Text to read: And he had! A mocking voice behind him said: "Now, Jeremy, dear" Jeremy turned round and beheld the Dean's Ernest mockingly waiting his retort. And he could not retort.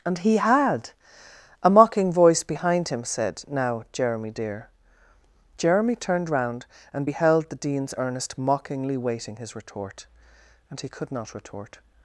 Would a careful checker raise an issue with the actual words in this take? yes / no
no